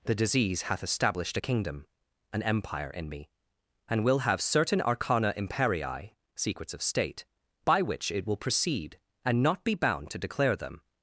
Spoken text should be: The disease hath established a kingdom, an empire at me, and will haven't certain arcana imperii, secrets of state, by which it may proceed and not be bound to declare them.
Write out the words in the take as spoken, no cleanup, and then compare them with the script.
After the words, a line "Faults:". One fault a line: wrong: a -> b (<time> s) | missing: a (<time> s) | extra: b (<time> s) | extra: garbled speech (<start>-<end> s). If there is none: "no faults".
The disease hath established a kingdom, an empire in me, and will have certain arcana imperii, secrets of state, by which it will proceed and not be bound to declare them.
Faults:
wrong: at -> in (2.9 s)
wrong: haven't -> have (4.2 s)
wrong: may -> will (8.2 s)